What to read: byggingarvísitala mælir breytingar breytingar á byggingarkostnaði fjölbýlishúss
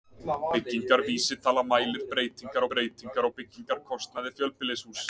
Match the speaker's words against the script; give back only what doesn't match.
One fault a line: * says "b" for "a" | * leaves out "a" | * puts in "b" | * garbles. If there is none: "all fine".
all fine